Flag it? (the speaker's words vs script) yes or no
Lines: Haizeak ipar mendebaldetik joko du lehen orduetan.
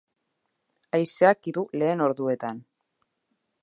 yes